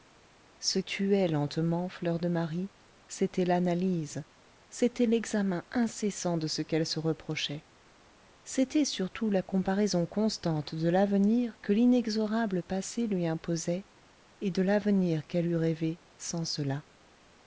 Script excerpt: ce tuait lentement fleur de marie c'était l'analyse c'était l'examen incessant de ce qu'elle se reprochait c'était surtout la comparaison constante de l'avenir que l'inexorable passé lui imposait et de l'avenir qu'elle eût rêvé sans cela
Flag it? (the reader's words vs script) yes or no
no